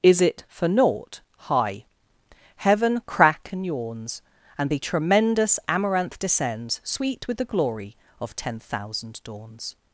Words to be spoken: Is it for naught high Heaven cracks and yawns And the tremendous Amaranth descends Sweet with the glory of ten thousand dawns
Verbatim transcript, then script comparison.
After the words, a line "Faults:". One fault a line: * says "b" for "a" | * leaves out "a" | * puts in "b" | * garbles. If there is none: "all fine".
Is it for naught high Heaven crack and yawns And the tremendous Amaranth descends Sweet with the glory of ten thousand dawns
Faults:
* says "crack" for "cracks"